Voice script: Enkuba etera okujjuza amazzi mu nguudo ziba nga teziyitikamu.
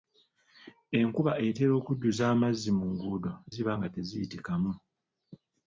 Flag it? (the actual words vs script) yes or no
no